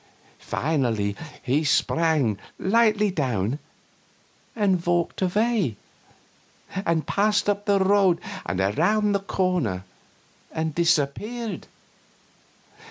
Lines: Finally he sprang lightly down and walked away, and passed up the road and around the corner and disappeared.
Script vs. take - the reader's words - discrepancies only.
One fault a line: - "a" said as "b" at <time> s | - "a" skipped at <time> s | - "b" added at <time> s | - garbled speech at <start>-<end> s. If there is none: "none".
none